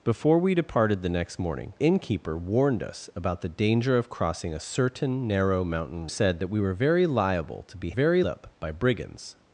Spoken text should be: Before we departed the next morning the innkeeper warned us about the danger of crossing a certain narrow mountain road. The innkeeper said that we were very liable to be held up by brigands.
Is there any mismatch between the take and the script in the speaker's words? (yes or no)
yes